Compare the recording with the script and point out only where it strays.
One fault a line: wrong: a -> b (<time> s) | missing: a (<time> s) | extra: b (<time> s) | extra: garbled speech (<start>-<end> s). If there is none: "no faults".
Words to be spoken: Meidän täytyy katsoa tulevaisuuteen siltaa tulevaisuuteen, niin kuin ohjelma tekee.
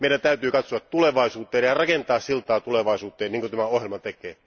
extra: ja rakentaa (1.6 s)
extra: tämä (3.5 s)